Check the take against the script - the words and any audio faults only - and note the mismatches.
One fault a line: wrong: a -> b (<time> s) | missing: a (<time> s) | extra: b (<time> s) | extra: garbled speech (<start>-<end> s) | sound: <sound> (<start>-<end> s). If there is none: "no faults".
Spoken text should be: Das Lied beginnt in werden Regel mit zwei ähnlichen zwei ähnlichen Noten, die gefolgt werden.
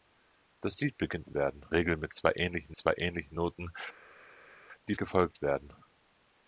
no faults